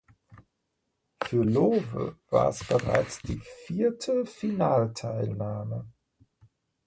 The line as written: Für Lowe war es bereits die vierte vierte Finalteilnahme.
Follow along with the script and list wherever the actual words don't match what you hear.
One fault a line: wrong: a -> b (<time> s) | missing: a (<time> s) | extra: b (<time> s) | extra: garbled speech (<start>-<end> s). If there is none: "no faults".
missing: vierte (4.3 s)